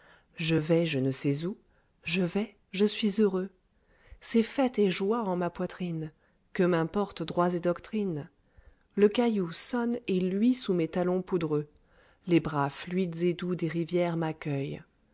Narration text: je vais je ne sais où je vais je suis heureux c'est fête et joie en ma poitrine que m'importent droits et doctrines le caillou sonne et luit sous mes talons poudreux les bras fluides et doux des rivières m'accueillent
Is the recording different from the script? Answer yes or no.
no